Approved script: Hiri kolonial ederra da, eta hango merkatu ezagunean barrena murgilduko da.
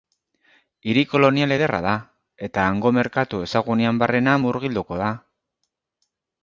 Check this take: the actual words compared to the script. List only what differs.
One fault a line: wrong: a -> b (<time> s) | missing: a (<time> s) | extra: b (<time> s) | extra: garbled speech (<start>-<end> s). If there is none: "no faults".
no faults